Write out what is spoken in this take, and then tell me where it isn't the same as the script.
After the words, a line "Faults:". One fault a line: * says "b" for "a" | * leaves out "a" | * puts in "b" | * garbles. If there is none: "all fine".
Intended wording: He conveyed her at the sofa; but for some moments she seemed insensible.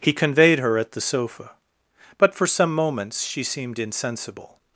He conveyed her at the sofa; but for some moments she seemed insensible.
Faults:
all fine